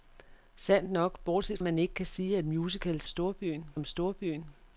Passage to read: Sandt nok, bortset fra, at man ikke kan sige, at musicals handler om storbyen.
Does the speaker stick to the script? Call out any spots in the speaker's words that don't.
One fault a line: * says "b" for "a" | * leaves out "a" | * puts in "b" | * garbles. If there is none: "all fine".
* leaves out "fra"
* says "storbyen" for "handler"